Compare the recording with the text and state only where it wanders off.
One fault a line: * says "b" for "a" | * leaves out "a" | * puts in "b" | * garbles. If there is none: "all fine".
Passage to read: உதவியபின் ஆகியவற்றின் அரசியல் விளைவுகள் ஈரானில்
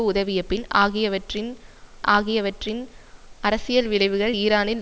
* puts in "ஆகியவற்றின்"